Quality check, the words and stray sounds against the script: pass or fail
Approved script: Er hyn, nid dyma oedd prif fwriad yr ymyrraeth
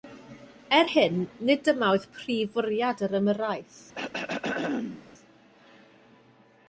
fail